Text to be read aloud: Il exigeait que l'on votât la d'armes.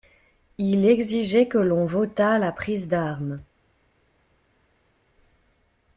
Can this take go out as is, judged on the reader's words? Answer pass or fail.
fail